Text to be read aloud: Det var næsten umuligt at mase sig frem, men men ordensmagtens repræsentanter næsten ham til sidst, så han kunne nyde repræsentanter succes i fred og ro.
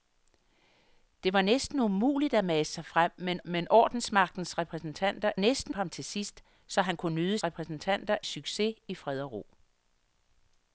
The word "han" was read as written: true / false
true